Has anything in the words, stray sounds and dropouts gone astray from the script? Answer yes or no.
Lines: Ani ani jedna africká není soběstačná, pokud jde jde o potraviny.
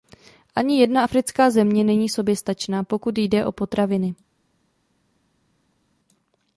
yes